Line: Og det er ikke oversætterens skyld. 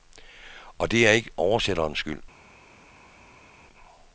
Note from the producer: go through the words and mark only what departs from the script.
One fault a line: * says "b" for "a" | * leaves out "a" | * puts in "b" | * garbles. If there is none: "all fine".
all fine